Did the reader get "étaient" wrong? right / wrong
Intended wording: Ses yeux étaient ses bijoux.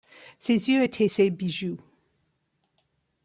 right